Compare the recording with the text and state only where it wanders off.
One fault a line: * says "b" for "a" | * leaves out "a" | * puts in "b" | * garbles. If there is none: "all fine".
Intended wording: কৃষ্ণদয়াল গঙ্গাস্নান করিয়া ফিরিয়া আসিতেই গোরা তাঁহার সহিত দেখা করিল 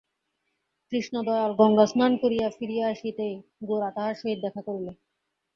all fine